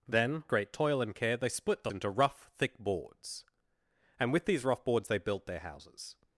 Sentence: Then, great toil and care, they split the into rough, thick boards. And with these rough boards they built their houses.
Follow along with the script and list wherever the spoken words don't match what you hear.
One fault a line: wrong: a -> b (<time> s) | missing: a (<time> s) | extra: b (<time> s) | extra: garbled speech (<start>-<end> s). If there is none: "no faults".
no faults